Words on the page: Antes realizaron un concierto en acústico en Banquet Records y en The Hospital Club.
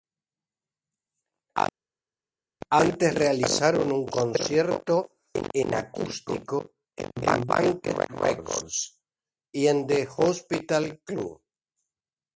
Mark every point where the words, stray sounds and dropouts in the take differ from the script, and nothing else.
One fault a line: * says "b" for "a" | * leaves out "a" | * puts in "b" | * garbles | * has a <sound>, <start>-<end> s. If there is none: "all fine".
all fine